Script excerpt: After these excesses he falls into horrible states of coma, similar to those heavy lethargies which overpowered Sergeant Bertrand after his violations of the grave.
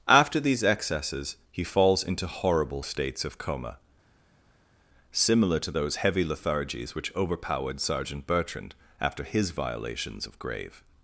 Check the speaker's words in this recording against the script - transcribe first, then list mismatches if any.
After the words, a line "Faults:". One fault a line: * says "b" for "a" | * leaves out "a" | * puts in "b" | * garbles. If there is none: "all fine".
After these excesses he falls into horrible states of coma, similar to those heavy lethargies which overpowered Sergeant Bertrand after his violations of grave.
Faults:
* leaves out "the"